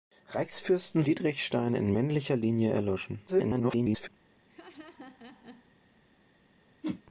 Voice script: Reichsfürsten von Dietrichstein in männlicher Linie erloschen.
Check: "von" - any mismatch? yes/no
yes